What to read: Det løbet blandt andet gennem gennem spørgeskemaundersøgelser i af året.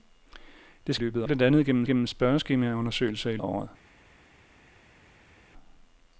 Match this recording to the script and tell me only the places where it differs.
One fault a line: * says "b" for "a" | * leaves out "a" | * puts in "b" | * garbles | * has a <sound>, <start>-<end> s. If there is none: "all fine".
all fine